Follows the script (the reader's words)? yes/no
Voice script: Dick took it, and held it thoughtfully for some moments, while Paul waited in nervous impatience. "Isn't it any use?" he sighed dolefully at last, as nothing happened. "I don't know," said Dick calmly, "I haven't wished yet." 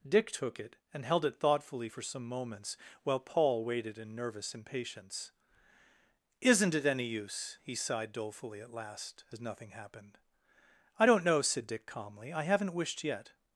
yes